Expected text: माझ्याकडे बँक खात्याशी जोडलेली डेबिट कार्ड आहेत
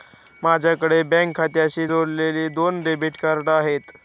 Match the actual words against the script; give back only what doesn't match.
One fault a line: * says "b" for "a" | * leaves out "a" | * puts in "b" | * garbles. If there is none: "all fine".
* puts in "दोन"